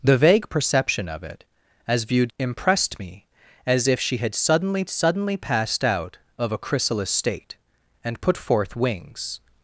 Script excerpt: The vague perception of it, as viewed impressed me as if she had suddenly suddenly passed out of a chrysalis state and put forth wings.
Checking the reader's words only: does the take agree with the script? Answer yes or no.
yes